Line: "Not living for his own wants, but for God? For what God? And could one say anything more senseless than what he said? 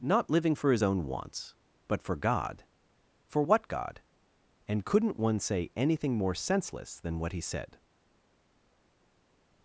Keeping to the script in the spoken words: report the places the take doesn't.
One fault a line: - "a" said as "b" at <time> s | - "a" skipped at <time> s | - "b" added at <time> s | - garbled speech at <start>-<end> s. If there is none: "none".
- "could" said as "couldn't" at 4.8 s